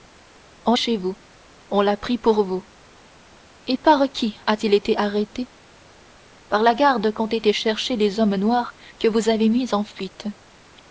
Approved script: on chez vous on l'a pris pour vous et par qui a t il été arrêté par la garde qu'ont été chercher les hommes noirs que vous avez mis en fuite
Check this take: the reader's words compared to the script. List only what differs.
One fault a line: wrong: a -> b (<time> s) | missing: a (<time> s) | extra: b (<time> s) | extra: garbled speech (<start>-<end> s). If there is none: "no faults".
no faults